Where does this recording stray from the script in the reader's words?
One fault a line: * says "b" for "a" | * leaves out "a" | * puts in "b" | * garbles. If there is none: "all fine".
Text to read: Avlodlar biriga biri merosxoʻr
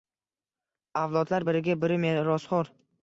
all fine